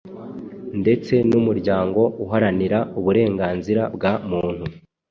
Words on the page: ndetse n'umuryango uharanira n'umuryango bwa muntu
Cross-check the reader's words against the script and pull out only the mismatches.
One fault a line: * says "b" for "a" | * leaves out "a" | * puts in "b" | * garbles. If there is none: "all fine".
* says "uburenganzira" for "n'umuryango"